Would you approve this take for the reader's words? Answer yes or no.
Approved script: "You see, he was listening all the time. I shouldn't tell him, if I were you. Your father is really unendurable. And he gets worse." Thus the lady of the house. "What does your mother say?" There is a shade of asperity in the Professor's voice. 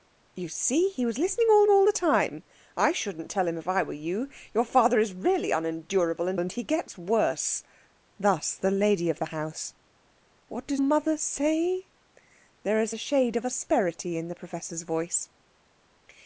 no